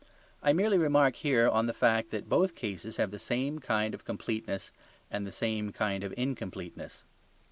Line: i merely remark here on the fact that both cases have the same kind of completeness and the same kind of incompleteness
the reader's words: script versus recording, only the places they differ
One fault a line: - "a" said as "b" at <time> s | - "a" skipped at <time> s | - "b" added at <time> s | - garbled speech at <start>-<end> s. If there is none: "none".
none